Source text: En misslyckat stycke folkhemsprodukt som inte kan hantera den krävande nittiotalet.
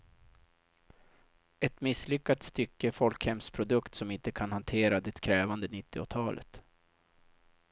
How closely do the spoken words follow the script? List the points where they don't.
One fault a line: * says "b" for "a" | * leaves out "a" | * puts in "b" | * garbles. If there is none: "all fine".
* says "Ett" for "En"
* says "det" for "den"